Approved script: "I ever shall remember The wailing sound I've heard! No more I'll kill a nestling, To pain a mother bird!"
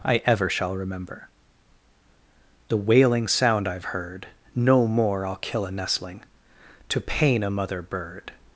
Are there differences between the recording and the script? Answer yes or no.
no